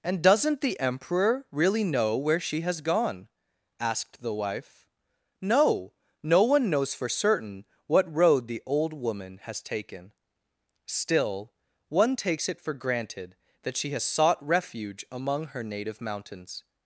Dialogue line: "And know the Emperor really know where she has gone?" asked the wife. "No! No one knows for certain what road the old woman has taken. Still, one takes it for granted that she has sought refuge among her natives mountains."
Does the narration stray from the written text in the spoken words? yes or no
yes